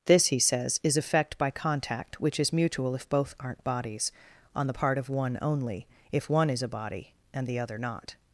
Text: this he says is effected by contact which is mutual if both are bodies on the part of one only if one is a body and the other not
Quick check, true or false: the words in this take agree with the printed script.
false